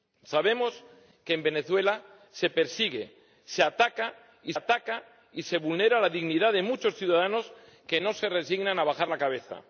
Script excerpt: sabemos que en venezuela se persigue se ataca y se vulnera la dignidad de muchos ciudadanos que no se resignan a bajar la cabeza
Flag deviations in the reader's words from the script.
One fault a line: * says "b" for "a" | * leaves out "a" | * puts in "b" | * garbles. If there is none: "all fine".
* puts in "ataca y"